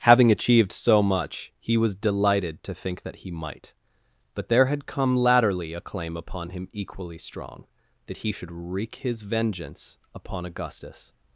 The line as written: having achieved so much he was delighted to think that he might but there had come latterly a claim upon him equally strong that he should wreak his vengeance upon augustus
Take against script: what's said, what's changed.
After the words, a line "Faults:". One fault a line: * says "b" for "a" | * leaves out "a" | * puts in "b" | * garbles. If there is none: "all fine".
having achieved so much he was delighted to think that he might but there had come latterly a claim upon him equally strong that he should wreak his vengeance upon augustus
Faults:
all fine